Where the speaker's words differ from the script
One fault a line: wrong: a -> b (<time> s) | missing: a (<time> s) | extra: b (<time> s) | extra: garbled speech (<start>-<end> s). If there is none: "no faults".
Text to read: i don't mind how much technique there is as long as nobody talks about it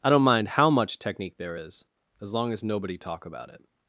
wrong: talks -> talk (3.0 s)